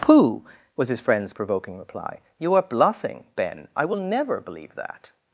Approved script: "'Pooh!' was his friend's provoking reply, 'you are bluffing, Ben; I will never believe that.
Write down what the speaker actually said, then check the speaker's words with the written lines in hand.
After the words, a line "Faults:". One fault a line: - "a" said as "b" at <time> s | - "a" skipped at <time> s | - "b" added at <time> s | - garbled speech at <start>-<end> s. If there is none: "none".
"'Pooh!' was his friend's provoking reply, 'you are bluffing, Ben; I will never believe that.
Faults:
none